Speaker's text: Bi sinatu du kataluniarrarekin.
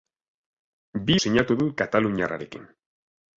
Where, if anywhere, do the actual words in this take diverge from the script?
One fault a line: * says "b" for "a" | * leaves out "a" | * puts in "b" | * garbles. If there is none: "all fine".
all fine